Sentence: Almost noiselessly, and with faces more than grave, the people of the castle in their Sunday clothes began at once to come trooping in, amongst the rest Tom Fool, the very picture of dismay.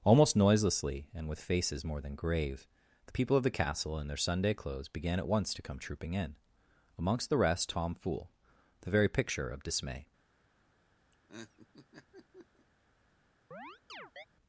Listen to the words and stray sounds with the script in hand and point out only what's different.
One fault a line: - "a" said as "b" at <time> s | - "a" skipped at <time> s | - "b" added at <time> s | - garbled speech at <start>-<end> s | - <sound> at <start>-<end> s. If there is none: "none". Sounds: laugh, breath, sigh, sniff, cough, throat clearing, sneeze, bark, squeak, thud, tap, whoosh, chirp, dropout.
- laugh at 11.1-12.7 s
- chirp at 13.5-14.3 s